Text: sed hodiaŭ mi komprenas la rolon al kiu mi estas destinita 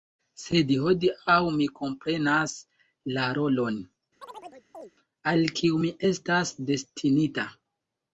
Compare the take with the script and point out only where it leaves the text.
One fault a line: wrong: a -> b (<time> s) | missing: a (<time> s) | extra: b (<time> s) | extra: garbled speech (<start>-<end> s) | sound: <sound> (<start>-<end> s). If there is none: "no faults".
sound: chirp (4.2-4.9 s)